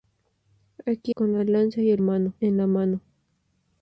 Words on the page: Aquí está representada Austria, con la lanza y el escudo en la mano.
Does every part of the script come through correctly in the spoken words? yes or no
no